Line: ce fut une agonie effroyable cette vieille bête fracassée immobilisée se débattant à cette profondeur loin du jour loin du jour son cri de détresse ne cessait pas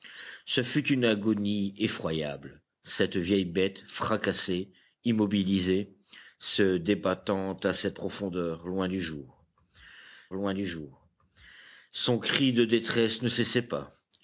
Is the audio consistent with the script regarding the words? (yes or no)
yes